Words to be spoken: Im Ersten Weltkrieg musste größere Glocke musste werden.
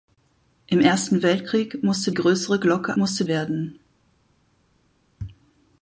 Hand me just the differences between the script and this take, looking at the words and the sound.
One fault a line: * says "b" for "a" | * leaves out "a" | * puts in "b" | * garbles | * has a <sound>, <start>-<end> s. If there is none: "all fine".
all fine